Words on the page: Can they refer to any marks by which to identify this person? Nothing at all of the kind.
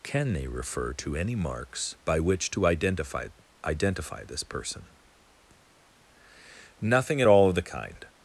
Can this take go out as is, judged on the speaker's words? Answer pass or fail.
fail